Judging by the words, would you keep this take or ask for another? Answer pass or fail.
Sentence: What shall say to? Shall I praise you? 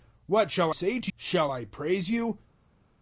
pass